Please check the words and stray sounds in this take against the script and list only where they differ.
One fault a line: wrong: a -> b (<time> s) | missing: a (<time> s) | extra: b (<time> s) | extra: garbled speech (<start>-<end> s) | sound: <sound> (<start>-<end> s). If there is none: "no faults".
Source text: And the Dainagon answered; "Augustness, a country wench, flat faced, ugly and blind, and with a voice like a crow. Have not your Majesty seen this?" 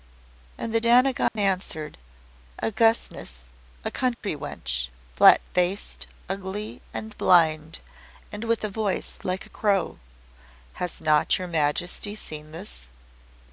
sound: dropout (1.3-1.4 s)
sound: dropout (4.1-4.2 s)
wrong: Have -> Has (10.8 s)